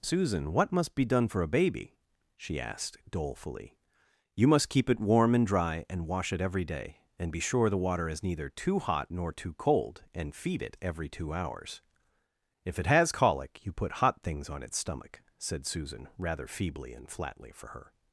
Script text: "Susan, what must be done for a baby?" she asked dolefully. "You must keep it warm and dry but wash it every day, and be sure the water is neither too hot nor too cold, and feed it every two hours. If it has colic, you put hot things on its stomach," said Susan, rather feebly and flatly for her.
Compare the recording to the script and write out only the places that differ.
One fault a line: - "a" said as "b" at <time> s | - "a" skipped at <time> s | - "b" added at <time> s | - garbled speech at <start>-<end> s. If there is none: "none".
- "but" said as "and" at 5.9 s